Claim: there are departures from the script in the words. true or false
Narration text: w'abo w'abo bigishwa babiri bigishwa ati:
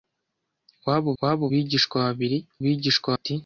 false